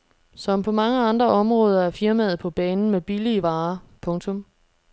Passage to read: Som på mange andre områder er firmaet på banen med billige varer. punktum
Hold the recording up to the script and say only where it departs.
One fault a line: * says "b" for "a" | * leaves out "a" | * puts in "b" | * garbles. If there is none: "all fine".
all fine